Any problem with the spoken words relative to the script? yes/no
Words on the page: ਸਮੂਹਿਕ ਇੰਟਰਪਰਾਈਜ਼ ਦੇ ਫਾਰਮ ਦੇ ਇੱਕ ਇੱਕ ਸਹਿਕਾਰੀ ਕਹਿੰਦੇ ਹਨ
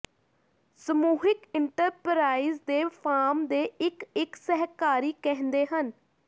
no